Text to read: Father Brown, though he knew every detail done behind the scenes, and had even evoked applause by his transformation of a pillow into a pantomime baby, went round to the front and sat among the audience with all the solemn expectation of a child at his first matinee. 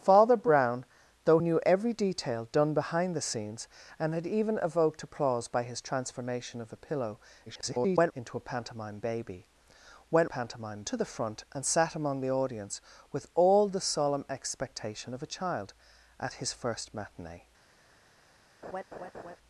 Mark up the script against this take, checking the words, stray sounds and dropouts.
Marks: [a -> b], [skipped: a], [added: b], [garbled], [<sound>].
Father Brown, though [skipped: he] knew every detail done behind the scenes, and had even evoked applause by his transformation of a pillow [garbled] into a pantomime baby, went [round -> pantomime] to the front and sat among the audience with all the solemn expectation of a child at his first matinee. [laugh]